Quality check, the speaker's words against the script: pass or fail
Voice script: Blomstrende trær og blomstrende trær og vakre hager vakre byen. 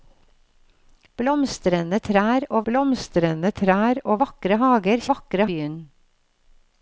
pass